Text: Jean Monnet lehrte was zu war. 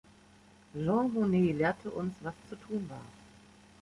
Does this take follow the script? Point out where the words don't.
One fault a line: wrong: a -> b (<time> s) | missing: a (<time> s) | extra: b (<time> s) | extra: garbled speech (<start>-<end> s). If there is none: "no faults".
extra: uns (1.9 s)
extra: tun (2.5 s)